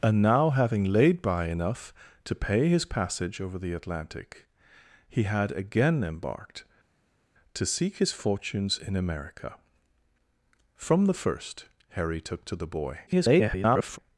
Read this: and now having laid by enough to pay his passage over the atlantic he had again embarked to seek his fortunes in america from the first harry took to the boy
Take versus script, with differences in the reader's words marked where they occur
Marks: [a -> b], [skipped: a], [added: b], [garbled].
and now having laid by enough to pay his passage over the atlantic he had again embarked to seek his fortunes in america from the first harry took to the boy [garbled]